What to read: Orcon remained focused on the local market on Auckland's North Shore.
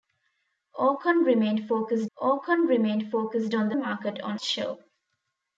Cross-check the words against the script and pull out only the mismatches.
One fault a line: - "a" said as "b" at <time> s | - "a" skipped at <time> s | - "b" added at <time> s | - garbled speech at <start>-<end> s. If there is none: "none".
- "orcon remained focused" added at 2.2 s
- "local" skipped at 3.8 s
- "Auckland's North" skipped at 4.4 s